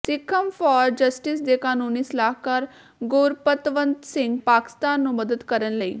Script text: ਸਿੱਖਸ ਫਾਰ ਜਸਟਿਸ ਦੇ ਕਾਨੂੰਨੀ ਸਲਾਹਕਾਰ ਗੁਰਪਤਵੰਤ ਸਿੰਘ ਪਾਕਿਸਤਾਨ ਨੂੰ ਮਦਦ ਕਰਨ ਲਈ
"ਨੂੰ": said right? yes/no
yes